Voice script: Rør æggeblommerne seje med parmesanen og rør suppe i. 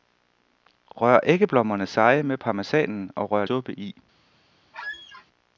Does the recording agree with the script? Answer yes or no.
yes